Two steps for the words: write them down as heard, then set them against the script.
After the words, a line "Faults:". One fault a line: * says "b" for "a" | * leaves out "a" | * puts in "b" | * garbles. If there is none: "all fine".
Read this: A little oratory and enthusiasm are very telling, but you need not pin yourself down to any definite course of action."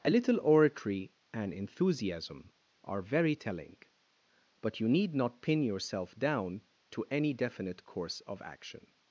A little oratory and enthusiasm are very telling, but you need not pin yourself down to any definite course of action."
Faults:
all fine